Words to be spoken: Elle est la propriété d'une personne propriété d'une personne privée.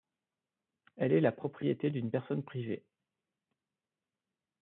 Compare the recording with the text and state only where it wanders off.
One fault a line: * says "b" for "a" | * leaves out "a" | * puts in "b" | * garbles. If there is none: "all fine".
* leaves out "propriété d'une personne"